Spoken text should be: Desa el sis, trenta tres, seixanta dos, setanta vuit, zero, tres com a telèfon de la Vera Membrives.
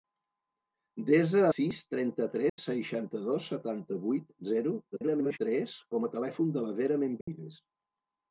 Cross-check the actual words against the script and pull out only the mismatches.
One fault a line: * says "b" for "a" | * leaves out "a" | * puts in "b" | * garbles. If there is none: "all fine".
* leaves out "el"
* garbles